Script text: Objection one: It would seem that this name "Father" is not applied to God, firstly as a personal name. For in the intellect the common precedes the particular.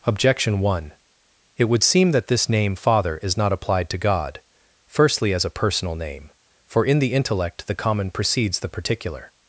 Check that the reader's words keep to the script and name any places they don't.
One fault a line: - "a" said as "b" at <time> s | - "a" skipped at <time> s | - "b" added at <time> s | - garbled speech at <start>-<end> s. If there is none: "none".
none